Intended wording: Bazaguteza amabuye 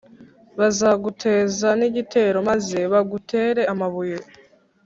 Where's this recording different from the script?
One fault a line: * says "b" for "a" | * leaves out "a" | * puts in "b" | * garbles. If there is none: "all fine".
* puts in "n'igitero maze bagutere"